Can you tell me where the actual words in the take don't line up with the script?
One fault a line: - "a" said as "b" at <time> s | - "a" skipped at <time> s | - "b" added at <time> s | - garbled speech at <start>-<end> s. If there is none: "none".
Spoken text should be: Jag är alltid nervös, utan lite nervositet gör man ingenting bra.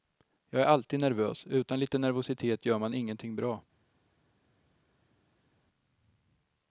none